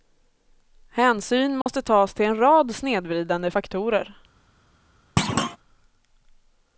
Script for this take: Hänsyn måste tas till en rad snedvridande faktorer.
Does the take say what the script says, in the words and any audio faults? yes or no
no